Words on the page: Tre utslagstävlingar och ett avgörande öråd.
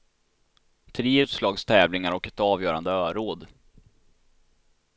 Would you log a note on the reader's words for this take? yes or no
no